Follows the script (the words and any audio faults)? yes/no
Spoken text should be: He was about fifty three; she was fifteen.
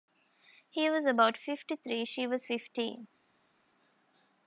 yes